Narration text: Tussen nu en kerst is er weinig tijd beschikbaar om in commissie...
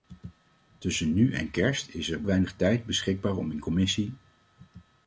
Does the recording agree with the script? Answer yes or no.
yes